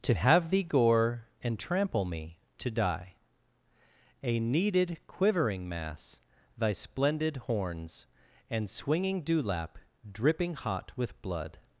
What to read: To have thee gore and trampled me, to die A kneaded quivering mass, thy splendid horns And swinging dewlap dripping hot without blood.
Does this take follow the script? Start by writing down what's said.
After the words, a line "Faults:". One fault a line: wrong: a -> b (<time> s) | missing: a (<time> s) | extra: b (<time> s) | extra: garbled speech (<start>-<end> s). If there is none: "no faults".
To have thee gore and trample me, to die A kneaded quivering mass, thy splendid horns And swinging dewlap dripping hot with blood.
Faults:
wrong: trampled -> trample (1.6 s)
wrong: without -> with (10.9 s)